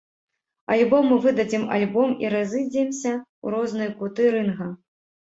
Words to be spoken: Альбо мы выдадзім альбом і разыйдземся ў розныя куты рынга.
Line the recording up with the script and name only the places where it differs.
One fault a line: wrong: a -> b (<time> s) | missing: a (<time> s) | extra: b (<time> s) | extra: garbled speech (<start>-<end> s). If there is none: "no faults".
no faults